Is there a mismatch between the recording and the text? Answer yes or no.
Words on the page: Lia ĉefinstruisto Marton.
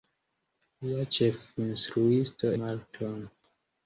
no